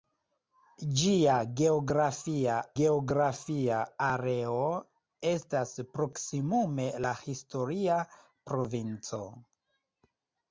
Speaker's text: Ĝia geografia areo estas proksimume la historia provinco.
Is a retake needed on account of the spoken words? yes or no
yes